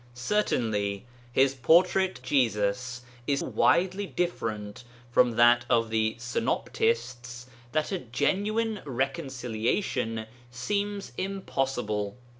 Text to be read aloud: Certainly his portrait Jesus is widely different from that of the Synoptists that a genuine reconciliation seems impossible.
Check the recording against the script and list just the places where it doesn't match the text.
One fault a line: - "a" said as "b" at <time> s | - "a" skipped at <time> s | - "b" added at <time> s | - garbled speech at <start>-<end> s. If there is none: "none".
none